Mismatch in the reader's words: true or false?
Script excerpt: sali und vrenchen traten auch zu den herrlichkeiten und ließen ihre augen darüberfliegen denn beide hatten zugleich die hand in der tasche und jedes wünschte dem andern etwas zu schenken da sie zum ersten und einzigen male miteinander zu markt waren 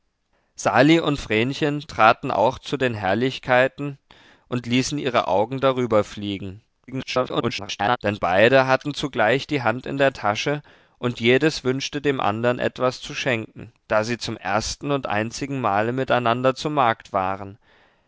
true